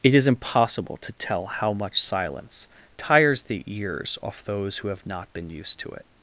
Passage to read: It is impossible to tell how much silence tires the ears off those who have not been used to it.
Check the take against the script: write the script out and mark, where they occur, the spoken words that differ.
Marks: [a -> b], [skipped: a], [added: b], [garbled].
It is impossible to tell how much silence tires the ears off those who have not been used to it.